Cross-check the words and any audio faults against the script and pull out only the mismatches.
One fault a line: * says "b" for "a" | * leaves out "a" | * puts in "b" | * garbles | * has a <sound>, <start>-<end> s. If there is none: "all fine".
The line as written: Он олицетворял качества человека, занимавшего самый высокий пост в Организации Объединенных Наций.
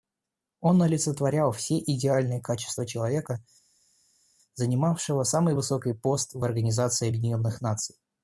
* puts in "все идеальные"